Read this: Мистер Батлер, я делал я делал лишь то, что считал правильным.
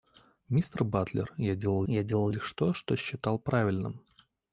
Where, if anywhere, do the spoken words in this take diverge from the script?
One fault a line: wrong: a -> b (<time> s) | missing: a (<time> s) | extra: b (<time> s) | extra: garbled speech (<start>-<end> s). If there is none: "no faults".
no faults